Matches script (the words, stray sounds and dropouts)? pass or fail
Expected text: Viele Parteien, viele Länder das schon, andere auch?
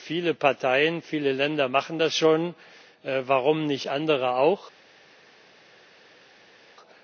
fail